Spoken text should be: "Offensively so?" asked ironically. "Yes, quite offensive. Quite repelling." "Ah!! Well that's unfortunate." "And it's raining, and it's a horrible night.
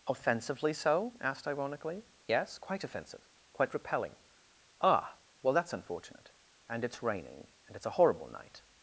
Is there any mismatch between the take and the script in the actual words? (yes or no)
no